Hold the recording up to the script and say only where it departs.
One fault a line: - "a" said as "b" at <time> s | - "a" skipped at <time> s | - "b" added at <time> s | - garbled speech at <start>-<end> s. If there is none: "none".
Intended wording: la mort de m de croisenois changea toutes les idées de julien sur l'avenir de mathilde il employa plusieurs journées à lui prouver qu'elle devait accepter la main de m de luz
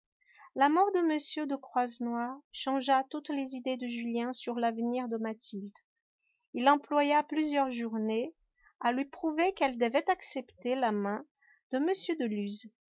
none